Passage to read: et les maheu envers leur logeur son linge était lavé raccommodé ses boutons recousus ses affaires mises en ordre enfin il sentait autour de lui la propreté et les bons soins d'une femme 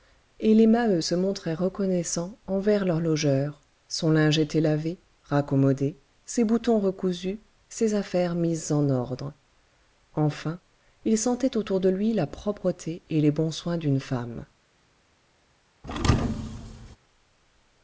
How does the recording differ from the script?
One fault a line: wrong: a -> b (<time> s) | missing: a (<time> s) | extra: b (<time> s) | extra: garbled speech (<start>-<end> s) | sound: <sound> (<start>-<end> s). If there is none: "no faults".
extra: se montraient reconnaissants (1.0 s)
sound: thud (15.8-17.0 s)